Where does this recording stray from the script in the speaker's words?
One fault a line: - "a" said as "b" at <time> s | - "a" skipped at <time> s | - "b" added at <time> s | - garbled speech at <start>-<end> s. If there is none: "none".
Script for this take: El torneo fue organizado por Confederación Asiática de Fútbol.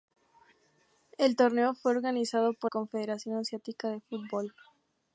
none